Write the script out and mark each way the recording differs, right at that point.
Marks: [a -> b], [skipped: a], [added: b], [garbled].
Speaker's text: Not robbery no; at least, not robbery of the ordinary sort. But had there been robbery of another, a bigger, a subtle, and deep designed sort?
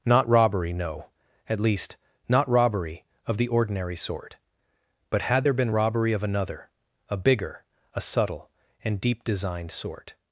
Not robbery no; at least, not robbery of the ordinary sort. But had there been robbery of another, a bigger, a subtle, and deep designed sort?